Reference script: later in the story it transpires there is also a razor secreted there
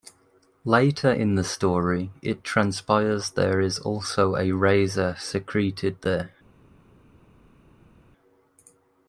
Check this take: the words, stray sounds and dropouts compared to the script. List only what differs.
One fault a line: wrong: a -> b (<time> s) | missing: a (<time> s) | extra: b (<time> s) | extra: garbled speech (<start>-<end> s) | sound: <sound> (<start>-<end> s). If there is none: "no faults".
no faults